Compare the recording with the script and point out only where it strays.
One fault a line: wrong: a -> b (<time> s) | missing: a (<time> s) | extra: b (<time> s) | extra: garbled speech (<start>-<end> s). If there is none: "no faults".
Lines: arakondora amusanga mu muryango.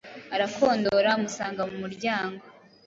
no faults